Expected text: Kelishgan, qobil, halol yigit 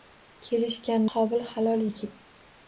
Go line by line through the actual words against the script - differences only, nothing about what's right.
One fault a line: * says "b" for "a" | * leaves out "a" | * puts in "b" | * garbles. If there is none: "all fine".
all fine